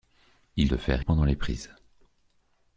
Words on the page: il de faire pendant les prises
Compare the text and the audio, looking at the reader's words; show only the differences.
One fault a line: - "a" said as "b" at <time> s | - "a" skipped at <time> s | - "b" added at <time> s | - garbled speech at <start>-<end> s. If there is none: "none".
none